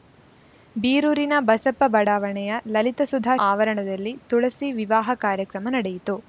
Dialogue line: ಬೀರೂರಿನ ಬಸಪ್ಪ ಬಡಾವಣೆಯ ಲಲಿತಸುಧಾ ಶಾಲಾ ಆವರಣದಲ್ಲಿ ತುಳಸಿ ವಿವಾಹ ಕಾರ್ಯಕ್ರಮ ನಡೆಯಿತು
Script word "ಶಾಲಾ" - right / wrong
wrong